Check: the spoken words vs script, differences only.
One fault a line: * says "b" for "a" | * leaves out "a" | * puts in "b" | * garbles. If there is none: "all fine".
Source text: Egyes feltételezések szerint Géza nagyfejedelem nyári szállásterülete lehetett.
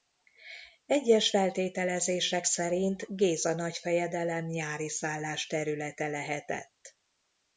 all fine